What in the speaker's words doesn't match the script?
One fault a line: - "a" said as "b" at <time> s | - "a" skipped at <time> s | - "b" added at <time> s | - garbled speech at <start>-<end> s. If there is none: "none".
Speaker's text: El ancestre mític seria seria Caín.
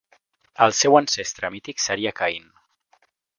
- "seu" added at 0.8 s
- "seria" skipped at 2.1 s